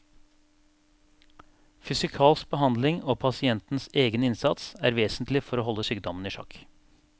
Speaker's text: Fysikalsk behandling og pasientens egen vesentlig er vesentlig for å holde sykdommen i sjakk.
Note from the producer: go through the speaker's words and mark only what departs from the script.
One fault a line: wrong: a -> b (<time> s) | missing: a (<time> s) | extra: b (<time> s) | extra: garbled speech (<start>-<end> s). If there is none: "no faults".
wrong: vesentlig -> innsats (4.2 s)